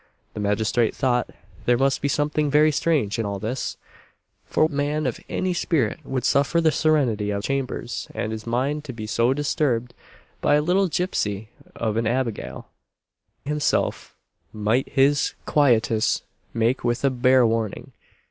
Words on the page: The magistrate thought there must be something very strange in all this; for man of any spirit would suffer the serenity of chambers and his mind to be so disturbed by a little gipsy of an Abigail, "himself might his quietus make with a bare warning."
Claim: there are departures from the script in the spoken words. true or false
false